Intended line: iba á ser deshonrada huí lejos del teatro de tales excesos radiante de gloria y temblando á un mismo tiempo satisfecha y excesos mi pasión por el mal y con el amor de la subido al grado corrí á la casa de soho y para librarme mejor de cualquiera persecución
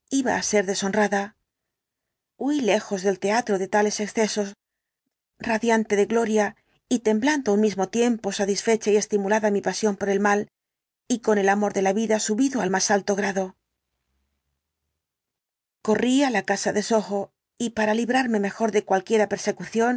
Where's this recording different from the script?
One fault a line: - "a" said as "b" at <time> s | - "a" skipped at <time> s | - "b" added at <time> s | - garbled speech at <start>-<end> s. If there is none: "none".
- "excesos" said as "estimulada" at 9.0 s
- "vida" added at 11.9 s
- "más alto" added at 12.7 s